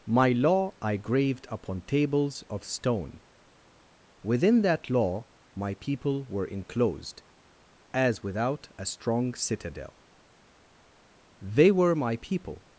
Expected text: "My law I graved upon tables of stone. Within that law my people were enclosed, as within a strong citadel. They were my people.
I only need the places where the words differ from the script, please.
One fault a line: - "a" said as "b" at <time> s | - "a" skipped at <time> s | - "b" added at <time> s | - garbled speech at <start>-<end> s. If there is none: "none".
- "within" said as "without" at 8.2 s